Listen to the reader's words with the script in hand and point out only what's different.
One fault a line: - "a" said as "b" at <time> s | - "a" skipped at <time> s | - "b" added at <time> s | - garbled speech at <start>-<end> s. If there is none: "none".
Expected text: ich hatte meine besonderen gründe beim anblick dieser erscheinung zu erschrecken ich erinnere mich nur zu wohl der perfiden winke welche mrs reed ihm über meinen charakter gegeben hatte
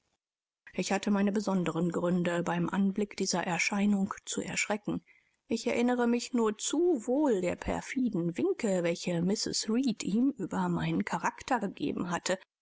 none